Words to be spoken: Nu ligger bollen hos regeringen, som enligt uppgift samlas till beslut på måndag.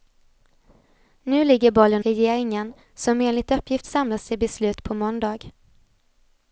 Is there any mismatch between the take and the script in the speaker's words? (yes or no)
yes